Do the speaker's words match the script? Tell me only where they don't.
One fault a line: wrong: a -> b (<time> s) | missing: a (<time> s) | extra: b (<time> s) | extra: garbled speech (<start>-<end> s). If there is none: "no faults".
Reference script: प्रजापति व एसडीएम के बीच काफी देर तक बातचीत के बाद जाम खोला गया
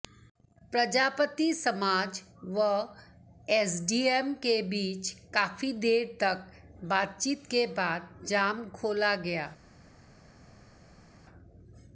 extra: समाज (1.5 s)